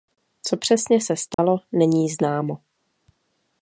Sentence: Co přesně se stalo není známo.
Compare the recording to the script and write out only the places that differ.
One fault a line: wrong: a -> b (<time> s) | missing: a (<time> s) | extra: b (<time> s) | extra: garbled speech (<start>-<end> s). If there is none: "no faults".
no faults